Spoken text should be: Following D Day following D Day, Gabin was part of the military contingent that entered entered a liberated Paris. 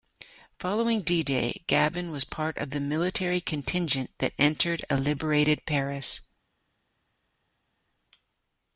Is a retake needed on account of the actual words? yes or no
yes